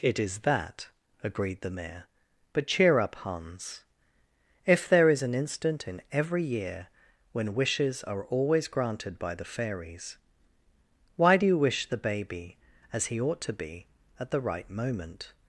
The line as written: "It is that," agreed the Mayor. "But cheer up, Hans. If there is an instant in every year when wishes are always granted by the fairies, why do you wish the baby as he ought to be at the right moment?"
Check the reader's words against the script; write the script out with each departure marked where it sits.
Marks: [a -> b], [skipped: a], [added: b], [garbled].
"It is that," agreed the Mayor. "But cheer up, Hans. If there is an instant in every year when wishes are always granted by the fairies, why do you wish the baby as he ought to be at the right moment?"